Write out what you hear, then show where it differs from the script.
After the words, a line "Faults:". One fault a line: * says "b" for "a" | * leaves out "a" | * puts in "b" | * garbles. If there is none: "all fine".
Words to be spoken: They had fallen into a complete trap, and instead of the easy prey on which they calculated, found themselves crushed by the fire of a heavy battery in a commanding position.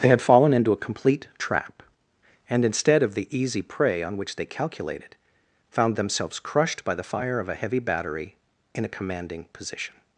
They had fallen into a complete trap, and instead of the easy prey on which they calculated, found themselves crushed by the fire of a heavy battery in a commanding position.
Faults:
all fine